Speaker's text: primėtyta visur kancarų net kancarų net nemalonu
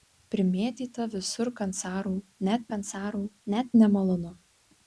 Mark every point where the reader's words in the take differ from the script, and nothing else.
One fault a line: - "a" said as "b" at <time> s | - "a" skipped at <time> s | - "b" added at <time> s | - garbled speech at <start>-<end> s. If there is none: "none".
none